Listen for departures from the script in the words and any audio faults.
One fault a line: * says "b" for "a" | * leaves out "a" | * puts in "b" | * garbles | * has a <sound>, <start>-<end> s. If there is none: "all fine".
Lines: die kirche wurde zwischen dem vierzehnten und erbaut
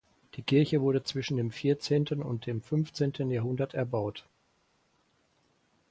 * puts in "dem fünfzehnten jahrhundert"